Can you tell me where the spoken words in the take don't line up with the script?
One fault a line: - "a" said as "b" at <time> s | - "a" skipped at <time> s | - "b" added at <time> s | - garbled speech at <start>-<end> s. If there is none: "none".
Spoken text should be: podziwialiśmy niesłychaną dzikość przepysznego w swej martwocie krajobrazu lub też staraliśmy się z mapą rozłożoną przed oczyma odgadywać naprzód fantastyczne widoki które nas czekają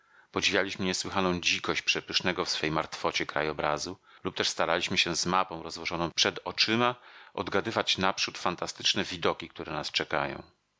none